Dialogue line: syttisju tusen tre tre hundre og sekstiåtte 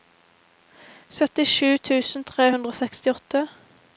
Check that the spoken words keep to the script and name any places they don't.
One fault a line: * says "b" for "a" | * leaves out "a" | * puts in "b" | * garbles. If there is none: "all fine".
* leaves out "tre"